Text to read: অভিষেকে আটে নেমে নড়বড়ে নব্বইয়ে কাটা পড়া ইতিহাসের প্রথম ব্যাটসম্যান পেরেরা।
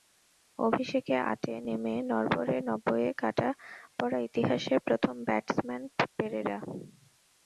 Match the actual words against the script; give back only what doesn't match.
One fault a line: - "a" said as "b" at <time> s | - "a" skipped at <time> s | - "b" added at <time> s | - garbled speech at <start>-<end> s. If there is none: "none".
none